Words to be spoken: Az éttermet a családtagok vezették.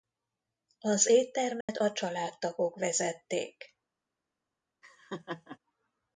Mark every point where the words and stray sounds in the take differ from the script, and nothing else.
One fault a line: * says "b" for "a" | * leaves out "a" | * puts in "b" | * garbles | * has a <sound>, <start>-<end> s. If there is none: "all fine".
* has a dropout, 1.6-1.7 s
* has a laugh, 4.8-5.6 s